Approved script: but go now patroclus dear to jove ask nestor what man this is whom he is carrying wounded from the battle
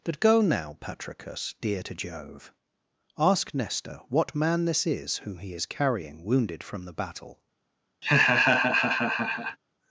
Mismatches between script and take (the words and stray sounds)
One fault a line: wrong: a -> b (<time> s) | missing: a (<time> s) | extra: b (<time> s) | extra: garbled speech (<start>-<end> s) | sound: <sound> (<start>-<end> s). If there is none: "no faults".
sound: laugh (8.0-9.6 s)